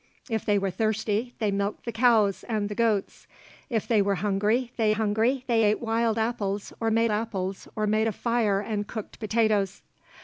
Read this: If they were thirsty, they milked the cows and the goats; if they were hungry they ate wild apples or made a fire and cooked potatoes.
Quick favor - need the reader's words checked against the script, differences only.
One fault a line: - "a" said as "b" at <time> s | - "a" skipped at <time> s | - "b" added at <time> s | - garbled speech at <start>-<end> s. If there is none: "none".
- "hungry they" added at 4.9 s
- "apples or made" added at 7.1 s